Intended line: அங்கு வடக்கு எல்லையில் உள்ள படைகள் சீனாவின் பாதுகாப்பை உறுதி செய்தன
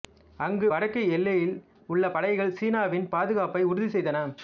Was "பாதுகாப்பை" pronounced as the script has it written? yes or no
yes